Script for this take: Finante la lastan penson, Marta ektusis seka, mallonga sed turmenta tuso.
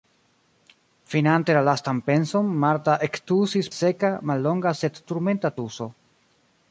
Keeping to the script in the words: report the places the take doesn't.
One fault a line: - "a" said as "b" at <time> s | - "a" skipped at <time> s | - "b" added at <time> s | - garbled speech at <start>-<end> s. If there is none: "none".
none